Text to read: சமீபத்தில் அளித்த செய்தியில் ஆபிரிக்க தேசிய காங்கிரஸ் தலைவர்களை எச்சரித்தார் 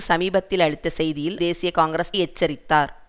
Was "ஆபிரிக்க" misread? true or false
true